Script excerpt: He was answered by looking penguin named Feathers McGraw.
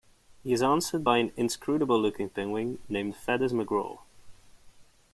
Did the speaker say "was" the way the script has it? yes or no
no